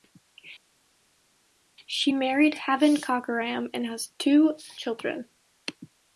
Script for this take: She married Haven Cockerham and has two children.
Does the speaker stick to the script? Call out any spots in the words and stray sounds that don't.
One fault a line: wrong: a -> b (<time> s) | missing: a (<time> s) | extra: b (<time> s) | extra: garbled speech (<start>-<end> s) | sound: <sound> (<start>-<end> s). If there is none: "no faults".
no faults